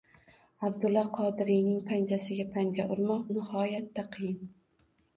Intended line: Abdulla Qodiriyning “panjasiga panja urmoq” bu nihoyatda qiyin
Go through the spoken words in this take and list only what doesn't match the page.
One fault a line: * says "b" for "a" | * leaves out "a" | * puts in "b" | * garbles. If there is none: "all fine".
* leaves out "bu"